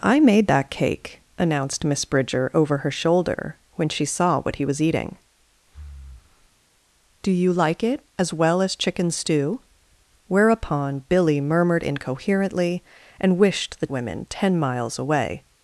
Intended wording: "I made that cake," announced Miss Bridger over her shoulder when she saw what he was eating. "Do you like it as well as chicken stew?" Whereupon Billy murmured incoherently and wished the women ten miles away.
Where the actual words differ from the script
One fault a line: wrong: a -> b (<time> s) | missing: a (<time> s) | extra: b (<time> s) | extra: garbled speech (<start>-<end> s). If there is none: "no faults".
no faults